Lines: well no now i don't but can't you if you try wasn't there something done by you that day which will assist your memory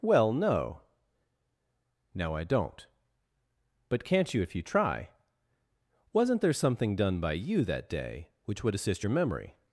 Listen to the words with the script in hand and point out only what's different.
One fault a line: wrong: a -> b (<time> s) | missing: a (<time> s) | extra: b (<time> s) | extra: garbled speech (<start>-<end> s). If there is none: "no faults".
wrong: will -> would (8.6 s)